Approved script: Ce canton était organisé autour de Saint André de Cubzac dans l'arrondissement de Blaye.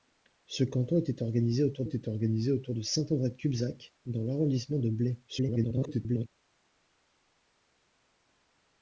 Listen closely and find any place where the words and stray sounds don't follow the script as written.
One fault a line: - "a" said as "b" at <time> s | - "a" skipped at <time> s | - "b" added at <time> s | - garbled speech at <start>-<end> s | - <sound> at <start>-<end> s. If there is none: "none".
- "était organisé autour" added at 1.8 s
- garbled speech at 5.3-6.3 s